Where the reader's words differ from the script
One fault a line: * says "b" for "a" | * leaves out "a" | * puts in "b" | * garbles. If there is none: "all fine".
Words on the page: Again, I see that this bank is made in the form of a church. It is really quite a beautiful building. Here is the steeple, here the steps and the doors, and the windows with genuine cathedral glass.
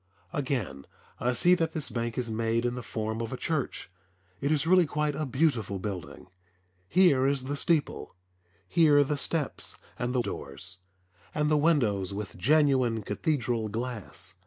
all fine